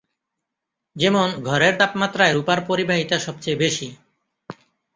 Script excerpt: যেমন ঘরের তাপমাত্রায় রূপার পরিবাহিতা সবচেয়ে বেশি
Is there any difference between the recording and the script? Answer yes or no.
no